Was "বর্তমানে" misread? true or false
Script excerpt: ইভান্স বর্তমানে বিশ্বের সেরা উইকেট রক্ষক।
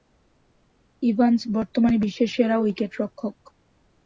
false